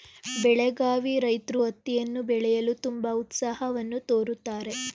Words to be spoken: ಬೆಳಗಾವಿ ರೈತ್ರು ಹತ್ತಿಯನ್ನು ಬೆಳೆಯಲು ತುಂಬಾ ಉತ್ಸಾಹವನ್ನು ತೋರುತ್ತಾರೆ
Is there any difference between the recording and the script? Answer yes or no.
no